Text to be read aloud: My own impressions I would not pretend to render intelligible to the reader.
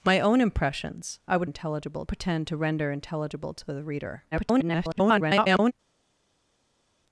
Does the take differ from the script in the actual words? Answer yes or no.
yes